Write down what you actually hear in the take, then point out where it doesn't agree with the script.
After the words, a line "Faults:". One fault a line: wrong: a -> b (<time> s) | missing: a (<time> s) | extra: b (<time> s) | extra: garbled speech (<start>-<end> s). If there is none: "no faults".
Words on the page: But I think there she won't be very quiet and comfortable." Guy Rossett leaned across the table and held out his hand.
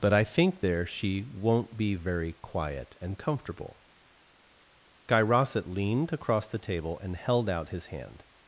But I think there she won't be very quiet and comfortable." Guy Rossett leaned across the table and held out his hand.
Faults:
no faults